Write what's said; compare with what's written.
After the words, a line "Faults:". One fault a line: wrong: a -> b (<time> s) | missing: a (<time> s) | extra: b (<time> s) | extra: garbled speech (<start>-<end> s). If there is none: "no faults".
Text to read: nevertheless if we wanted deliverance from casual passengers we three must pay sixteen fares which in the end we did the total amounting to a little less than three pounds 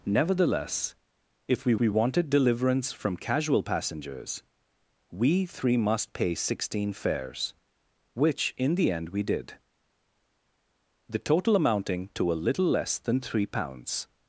nevertheless if we we wanted deliverance from casual passengers we three must pay sixteen fares which in the end we did the total amounting to a little less than three pounds
Faults:
extra: we (1.8 s)